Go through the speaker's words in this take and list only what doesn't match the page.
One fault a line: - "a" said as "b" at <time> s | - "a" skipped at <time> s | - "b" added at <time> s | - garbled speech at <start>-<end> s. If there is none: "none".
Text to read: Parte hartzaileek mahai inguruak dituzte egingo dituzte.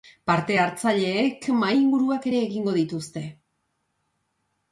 - "dituzte" said as "ere" at 2.3 s